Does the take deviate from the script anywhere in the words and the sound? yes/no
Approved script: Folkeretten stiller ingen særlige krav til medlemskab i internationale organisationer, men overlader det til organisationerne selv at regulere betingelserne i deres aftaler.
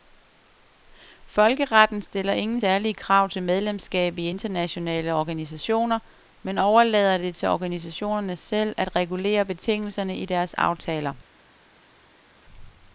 no